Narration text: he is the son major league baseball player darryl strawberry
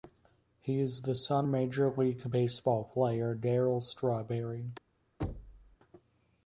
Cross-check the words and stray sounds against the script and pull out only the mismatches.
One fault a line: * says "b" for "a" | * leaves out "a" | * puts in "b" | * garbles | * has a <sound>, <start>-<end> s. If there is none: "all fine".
* has a thud, 5.2-5.8 s